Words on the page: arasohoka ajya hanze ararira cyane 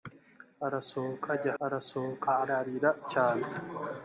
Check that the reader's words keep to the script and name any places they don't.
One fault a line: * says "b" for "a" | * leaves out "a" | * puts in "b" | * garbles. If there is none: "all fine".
* says "arasohoka" for "hanze"